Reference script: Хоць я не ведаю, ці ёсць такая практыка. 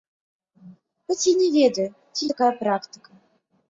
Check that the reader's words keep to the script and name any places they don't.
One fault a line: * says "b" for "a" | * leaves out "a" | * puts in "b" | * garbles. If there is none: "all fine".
* leaves out "ёсць"